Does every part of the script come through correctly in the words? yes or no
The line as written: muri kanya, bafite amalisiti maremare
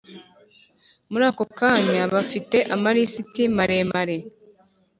no